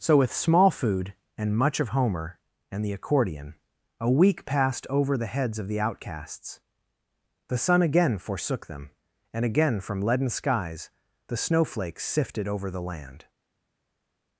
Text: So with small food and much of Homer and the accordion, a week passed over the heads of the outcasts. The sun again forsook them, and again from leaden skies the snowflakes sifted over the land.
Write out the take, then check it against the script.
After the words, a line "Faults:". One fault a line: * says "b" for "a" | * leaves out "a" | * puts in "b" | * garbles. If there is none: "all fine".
So with small food and much of Homer and the accordion, a week passed over the heads of the outcasts. The sun again forsook them, and again from leaden skies the snowflakes sifted over the land.
Faults:
all fine